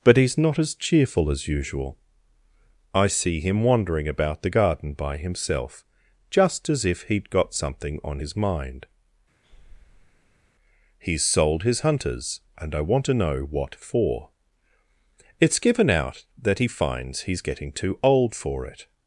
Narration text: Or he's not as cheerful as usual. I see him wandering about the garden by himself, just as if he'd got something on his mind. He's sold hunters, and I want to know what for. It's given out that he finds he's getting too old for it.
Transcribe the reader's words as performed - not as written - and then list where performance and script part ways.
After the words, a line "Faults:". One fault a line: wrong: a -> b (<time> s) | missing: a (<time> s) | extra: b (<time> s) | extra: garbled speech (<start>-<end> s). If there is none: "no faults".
But he's not as cheerful as usual. I see him wandering about the garden by himself, just as if he'd got something on his mind. He's sold his hunters, and I want to know what for. It's given out that he finds he's getting too old for it.
Faults:
wrong: Or -> But (0.0 s)
extra: his (11.6 s)